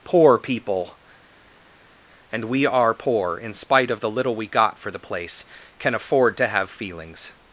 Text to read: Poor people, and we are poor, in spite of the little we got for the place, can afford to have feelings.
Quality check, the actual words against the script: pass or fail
pass